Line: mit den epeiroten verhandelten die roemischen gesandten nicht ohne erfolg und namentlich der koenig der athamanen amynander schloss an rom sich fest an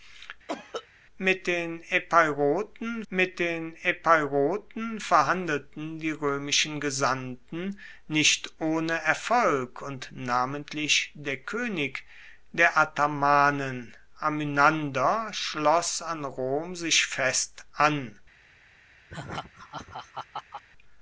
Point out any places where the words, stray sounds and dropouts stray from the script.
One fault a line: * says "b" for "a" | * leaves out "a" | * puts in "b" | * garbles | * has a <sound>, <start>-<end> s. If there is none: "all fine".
* has a cough, 0.5-0.9 s
* puts in "mit den epeiroten"
* has a laugh, 19.1-20.6 s